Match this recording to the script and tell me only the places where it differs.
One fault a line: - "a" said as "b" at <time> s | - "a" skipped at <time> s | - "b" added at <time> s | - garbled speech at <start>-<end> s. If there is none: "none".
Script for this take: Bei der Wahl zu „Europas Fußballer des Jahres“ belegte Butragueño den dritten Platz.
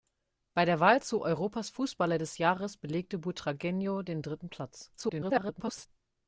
- garbled speech at 5.0-5.9 s